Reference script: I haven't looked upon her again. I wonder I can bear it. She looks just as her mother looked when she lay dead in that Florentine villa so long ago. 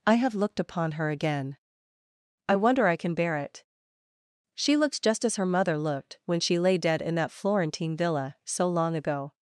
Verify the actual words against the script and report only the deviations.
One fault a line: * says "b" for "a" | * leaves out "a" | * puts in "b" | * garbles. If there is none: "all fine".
* says "have" for "haven't"